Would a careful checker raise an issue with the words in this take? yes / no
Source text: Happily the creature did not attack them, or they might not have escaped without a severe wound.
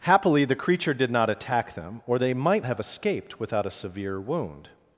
yes